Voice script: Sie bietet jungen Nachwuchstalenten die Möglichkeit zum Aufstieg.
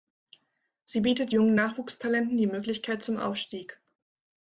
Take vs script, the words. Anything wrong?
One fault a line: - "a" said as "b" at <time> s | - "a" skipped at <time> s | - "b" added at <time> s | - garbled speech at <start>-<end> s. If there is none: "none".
none